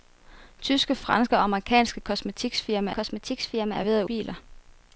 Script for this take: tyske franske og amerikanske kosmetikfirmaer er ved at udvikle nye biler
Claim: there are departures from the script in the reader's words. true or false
true